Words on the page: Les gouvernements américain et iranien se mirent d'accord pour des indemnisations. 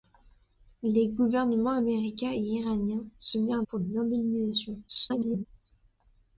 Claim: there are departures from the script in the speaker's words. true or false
true